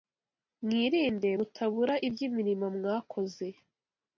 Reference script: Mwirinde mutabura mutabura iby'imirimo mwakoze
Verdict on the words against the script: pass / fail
fail